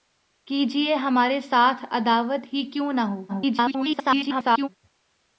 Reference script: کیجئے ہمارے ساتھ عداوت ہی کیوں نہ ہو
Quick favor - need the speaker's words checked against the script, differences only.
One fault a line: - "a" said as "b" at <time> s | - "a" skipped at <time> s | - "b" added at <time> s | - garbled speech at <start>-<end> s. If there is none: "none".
- garbled speech at 3.3-4.7 s